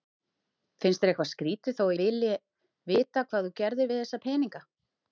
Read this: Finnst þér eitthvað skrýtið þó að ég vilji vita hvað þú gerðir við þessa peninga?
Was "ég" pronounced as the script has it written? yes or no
no